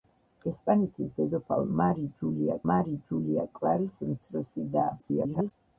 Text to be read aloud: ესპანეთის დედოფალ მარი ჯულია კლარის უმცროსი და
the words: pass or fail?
fail